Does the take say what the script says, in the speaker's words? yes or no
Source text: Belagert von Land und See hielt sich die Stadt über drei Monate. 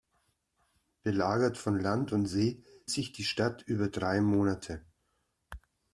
no